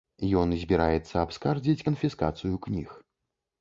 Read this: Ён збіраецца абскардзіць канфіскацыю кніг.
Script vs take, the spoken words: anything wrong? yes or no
no